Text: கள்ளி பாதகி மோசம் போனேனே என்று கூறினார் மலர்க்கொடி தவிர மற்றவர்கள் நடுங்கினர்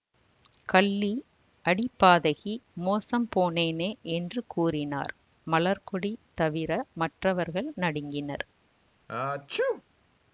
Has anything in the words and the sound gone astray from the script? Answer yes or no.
yes